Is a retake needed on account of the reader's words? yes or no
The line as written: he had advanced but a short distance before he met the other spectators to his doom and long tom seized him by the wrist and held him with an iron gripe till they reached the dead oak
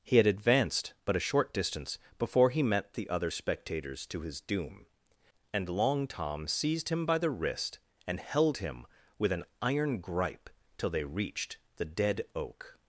no